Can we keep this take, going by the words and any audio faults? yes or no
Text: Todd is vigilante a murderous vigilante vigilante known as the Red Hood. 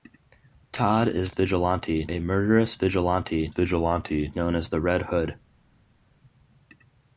yes